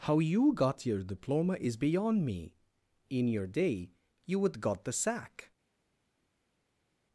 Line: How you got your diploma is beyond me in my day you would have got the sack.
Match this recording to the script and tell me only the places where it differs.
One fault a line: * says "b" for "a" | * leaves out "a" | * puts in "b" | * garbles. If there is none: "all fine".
* says "your" for "my"
* leaves out "have"